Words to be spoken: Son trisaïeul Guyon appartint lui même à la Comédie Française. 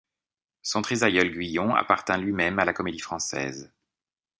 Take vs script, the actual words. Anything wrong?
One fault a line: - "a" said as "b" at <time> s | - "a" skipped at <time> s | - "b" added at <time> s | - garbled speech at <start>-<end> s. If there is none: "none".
none